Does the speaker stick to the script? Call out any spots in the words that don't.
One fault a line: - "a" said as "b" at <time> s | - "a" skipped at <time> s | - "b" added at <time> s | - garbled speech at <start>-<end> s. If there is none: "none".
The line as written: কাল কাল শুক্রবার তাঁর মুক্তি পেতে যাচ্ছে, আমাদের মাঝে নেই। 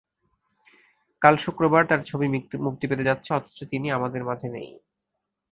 - "কাল" skipped at 1.4 s
- "ছবি" added at 2.0 s
- "অথচ তিনি" added at 3.3 s